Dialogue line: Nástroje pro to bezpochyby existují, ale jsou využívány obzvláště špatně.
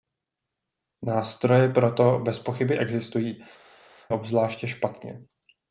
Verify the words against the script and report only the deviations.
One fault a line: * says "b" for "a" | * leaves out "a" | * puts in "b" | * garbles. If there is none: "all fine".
* leaves out "ale jsou využívány"